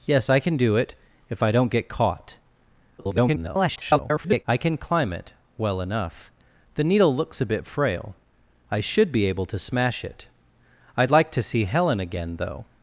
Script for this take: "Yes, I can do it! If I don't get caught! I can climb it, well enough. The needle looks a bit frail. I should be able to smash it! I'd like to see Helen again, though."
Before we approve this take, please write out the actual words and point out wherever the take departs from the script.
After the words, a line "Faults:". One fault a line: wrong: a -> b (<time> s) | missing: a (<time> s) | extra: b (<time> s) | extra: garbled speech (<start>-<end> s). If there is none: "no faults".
"Yes, I can do it! If I don't get caught! [garbled] I can climb it, well enough. The needle looks a bit frail. I should be able to smash it! I'd like to see Helen again, though."
Faults:
extra: garbled speech (3.0-4.4 s)